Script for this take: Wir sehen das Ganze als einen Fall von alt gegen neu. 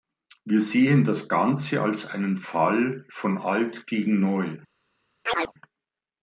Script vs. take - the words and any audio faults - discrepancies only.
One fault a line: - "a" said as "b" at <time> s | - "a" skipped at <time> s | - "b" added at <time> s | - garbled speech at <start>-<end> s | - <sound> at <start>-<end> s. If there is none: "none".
- chirp at 5.3-5.5 s